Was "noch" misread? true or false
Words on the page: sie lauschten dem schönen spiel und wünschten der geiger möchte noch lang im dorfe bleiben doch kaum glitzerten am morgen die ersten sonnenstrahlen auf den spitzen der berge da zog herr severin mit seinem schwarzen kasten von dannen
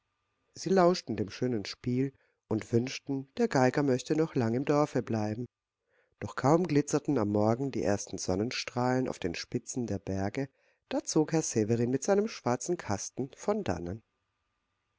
false